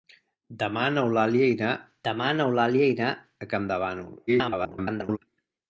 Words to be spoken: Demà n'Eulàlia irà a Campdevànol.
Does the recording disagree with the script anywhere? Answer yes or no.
yes